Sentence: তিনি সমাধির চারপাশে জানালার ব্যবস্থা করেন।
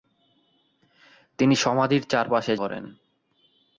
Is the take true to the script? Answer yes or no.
no